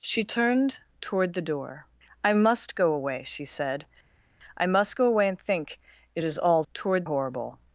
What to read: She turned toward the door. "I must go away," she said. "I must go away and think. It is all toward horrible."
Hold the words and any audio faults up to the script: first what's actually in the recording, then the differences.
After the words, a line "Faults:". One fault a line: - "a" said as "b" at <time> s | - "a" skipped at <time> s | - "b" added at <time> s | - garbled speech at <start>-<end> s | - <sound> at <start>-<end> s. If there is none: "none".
She turned toward the door. "I must go away," she said. "I must go away and think. It is all toward horrible."
Faults:
none